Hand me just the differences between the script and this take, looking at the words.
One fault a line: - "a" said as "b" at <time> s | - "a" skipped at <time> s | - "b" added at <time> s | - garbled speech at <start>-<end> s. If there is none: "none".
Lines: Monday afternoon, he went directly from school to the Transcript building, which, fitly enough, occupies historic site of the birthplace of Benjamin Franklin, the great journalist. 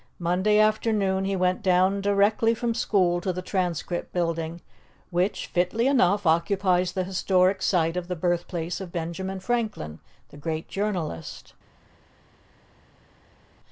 - "down" added at 1.6 s
- "the" added at 6.9 s